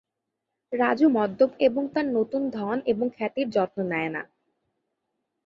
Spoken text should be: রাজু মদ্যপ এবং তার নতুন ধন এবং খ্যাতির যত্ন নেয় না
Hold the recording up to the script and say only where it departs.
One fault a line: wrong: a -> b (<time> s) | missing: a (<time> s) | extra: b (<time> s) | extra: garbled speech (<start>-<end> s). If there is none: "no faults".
no faults